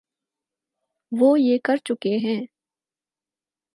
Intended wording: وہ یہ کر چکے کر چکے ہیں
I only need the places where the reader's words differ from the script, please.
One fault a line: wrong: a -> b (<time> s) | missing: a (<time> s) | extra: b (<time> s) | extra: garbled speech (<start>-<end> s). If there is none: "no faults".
missing: کر چکے (2.2 s)